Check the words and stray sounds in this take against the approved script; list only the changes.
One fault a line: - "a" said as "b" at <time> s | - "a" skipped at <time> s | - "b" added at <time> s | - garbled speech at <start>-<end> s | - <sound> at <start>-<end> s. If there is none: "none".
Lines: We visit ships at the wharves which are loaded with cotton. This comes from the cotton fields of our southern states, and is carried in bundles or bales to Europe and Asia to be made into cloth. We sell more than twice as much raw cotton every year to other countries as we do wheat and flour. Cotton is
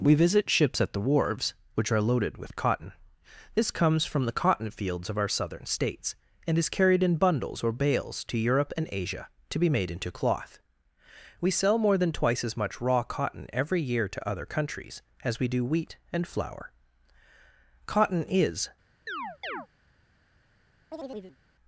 - chirp at 19.1-19.7 s
- chirp at 20.9-21.4 s